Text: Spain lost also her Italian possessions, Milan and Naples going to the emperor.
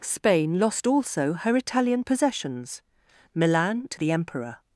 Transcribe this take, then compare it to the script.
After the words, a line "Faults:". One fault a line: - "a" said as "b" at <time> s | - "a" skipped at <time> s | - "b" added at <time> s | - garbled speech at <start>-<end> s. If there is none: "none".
Spain lost also her Italian possessions, Milan to the emperor.
Faults:
- "and Naples going" skipped at 3.9 s